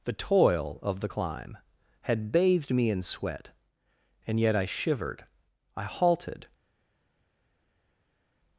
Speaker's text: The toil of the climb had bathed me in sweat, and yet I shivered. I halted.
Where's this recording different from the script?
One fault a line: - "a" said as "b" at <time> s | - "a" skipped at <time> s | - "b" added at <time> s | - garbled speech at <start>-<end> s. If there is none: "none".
none